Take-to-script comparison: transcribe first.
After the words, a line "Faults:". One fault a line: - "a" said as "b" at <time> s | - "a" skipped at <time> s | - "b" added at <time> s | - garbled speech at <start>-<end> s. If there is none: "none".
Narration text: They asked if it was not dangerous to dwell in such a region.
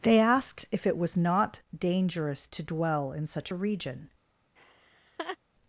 They asked if it was not dangerous to dwell in such a region.
Faults:
none